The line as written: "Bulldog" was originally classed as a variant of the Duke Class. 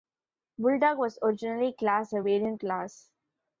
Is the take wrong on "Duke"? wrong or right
wrong